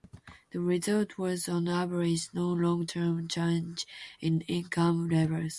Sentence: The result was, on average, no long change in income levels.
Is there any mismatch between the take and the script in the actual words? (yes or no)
yes